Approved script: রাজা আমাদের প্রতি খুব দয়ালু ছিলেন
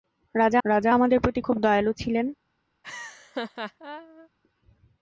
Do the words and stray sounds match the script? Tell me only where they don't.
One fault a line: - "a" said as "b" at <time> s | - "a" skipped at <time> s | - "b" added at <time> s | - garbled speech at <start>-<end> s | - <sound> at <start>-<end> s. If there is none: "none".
- "রাজা" added at 0.7 s
- laugh at 2.8-4.3 s